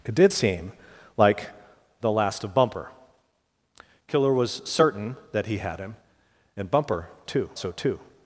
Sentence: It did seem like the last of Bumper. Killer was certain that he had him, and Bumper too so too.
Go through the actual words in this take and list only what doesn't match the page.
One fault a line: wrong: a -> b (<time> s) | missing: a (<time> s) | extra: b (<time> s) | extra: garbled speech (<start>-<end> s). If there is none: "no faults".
no faults